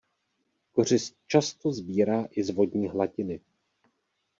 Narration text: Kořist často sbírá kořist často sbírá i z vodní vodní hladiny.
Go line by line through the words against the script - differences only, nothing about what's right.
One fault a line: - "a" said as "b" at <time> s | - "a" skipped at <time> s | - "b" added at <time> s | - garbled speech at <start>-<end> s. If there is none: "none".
- "kořist často sbírá" skipped at 2.3 s
- "vodní" skipped at 2.9 s